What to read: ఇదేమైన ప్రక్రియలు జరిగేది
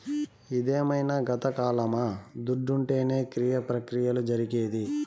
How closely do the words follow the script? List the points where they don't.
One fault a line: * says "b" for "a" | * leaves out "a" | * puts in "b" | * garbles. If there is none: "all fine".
* puts in "గతకాలమా దుడ్డుంటేనే క్రియ"